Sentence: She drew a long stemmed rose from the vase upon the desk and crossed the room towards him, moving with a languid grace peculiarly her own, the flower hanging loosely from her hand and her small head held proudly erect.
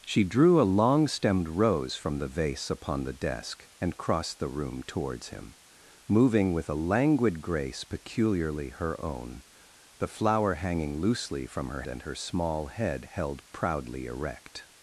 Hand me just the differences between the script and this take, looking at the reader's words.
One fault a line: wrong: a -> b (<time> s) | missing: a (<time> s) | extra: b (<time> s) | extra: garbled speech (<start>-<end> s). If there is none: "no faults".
missing: hand (11.8 s)